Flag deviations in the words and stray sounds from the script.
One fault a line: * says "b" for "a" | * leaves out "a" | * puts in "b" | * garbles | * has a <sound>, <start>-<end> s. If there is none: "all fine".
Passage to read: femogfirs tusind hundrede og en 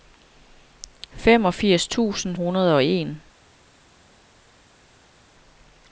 all fine